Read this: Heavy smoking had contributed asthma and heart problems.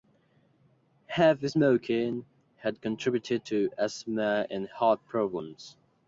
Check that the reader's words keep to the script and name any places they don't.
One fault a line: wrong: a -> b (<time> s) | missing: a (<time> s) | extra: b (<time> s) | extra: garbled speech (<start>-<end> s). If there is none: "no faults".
extra: to (3.4 s)